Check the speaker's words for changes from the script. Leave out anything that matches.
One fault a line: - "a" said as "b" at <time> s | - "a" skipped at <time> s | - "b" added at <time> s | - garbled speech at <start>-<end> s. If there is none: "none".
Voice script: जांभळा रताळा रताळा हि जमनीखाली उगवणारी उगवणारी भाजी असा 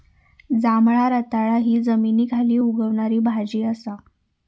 - "रताळा" skipped at 1.6 s
- "उगवणारी" skipped at 3.2 s